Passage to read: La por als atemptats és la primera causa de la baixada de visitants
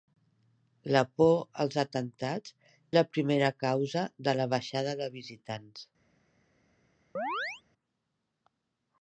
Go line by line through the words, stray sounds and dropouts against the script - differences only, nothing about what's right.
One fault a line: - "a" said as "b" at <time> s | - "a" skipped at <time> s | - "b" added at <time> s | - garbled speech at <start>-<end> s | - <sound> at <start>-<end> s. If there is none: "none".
- "és" skipped at 2.5 s
- chirp at 7.2-7.6 s